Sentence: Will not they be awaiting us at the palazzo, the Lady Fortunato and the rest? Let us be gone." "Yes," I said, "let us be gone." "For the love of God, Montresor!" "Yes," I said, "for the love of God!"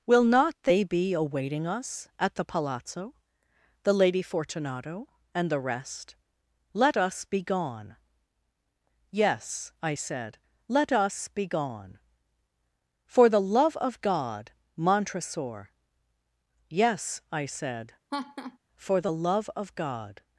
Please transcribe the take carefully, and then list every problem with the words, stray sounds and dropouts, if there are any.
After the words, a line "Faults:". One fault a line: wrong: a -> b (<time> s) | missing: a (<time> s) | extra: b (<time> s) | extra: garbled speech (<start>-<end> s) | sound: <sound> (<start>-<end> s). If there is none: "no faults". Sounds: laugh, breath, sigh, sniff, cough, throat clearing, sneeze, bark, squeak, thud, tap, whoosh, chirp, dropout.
Will not they be awaiting us at the palazzo, the Lady Fortunato and the rest? Let us be gone." "Yes," I said, "let us be gone." "For the love of God, Montresor!" "Yes," I said, "for the love of God!"
Faults:
sound: laugh (18.1-18.6 s)